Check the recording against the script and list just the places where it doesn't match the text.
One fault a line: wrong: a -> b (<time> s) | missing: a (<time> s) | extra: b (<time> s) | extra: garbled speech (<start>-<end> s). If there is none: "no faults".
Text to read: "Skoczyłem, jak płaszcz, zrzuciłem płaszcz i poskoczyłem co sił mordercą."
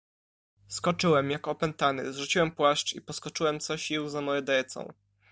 wrong: płaszcz -> opętany (1.5 s)
extra: za (4.1 s)